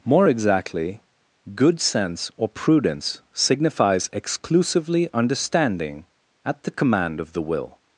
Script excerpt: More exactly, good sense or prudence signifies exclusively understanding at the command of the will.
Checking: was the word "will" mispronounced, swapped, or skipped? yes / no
no